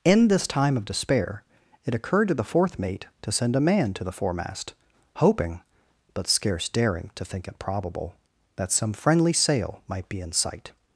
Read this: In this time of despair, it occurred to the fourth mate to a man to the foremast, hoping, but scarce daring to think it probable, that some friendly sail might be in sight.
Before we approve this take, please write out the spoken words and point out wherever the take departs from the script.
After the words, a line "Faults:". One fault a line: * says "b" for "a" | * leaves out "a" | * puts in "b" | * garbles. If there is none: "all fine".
In this time of despair, it occurred to the fourth mate to send a man to the foremast, hoping, but scarce daring to think it probable, that some friendly sail might be in sight.
Faults:
* puts in "send"